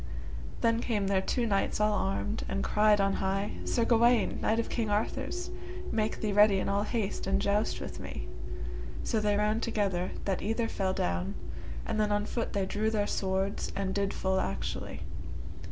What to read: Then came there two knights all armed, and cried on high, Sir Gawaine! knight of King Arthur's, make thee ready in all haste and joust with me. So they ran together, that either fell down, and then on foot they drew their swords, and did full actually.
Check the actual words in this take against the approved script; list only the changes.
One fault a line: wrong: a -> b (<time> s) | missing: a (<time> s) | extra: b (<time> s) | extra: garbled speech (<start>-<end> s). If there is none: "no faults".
no faults